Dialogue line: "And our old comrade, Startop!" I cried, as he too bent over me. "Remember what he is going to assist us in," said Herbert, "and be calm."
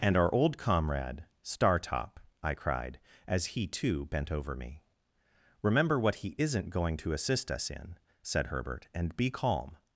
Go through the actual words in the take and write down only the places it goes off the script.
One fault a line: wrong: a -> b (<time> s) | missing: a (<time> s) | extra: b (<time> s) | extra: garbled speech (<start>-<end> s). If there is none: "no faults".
wrong: is -> isn't (6.4 s)